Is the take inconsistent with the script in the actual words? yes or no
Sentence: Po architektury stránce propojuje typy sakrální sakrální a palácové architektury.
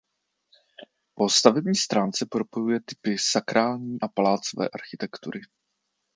yes